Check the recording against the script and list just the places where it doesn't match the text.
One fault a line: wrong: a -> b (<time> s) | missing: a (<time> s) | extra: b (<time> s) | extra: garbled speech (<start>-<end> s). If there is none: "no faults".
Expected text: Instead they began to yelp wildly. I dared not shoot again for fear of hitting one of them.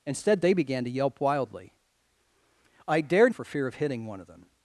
missing: not shoot again (3.3 s)